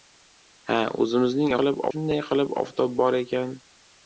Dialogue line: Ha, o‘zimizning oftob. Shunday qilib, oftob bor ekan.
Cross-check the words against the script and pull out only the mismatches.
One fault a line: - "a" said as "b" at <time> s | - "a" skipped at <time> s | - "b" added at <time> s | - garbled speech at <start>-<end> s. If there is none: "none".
- "oftob" said as "qilib" at 1.6 s